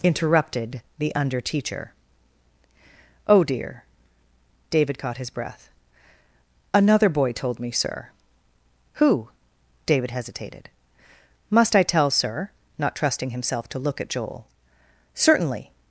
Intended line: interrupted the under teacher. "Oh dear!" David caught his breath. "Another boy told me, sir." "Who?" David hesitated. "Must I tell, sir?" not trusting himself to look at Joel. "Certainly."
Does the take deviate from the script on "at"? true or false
false